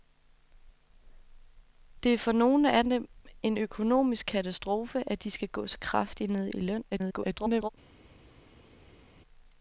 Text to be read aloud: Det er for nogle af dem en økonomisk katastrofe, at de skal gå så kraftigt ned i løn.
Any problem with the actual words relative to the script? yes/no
yes